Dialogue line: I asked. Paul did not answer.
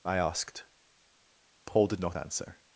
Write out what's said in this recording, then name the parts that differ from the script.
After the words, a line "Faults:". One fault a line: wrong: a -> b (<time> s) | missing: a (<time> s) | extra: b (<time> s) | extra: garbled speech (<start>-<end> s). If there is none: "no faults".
I asked. Paul did not answer.
Faults:
no faults